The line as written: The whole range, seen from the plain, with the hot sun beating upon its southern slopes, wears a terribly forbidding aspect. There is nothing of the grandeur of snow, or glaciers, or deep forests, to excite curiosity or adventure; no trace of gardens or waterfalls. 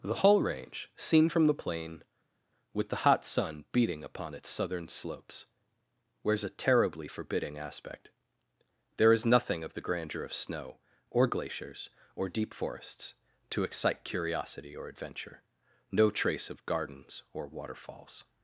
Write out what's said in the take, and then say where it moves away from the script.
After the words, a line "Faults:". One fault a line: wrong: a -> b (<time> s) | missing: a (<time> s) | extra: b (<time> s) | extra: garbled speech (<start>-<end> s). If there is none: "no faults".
The whole range, seen from the plain, with the hot sun beating upon its southern slopes, wears a terribly forbidding aspect. There is nothing of the grandeur of snow, or glaciers, or deep forests, to excite curiosity or adventure; no trace of gardens or waterfalls.
Faults:
no faults